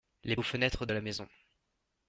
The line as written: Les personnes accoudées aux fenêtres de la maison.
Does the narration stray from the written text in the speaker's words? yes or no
yes